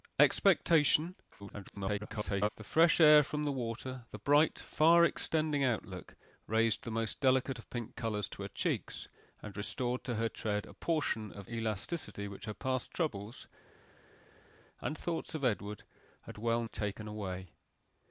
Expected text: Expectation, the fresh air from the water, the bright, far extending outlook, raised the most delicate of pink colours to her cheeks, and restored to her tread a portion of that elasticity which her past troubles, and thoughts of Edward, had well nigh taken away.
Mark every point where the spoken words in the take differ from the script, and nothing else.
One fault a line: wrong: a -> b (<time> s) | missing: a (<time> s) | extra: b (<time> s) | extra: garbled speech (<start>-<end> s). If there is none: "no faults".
extra: garbled speech (1.4-2.5 s)
missing: that (11.5 s)
missing: nigh (16.6 s)